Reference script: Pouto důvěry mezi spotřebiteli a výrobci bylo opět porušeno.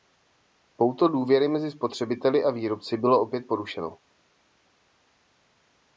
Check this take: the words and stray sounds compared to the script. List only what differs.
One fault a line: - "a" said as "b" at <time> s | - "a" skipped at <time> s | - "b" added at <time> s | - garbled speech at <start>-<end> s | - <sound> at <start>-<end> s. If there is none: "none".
none